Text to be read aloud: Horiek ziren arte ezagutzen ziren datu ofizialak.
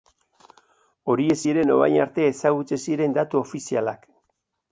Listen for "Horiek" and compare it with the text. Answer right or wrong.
right